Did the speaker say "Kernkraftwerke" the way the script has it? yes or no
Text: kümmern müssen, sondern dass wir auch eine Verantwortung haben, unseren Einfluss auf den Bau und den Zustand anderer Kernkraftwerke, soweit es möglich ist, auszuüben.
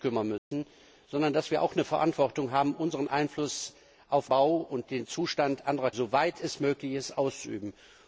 no